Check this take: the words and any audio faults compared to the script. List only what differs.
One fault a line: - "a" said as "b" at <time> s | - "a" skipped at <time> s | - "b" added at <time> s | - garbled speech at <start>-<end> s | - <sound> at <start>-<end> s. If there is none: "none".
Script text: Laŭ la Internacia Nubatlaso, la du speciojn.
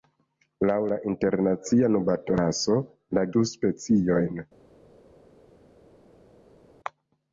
none